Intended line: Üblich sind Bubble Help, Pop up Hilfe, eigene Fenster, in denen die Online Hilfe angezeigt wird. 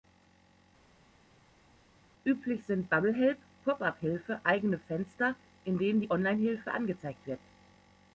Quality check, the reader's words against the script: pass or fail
pass